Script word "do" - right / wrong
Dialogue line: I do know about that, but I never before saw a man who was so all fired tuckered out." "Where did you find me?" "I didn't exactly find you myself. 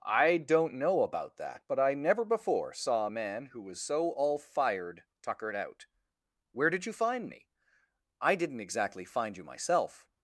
wrong